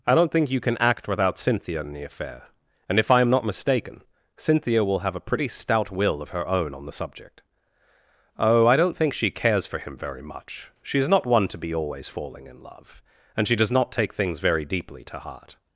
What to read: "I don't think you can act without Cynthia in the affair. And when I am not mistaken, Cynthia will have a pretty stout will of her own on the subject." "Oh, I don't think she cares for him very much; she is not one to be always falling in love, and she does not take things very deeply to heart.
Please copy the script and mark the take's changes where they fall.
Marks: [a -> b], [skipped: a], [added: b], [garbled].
"I don't think you can act without Cynthia in the affair. And [when -> if] I am not mistaken, Cynthia will have a pretty stout will of her own on the subject." "Oh, I don't think she cares for him very much; she is not one to be always falling in love, and she does not take things very deeply to heart.